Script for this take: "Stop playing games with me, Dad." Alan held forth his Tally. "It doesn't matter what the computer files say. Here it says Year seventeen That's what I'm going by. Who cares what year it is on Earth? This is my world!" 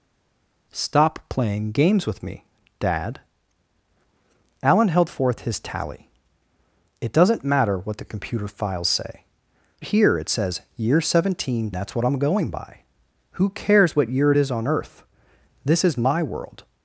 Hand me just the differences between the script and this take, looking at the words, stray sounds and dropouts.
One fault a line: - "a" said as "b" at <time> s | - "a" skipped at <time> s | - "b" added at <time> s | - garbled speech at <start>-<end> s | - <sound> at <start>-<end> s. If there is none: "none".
none